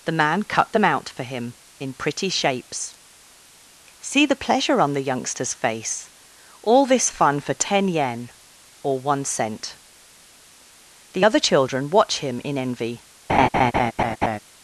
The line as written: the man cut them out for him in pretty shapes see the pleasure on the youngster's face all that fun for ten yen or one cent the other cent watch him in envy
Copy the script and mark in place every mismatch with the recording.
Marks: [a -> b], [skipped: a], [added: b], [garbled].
the man cut them out for him in pretty shapes see the pleasure on the youngster's face all [that -> this] fun for ten yen or one cent the other [cent -> children] watch him in envy